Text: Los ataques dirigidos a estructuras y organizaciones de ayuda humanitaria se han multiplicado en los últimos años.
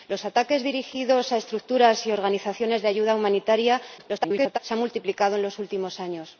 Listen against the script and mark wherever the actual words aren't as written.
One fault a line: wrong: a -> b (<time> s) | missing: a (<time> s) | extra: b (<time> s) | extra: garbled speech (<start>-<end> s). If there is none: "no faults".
extra: garbled speech (4.0-4.6 s)